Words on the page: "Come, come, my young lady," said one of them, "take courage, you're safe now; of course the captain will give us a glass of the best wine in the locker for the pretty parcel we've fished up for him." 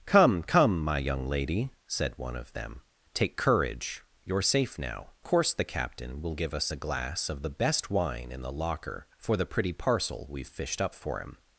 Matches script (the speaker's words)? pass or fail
fail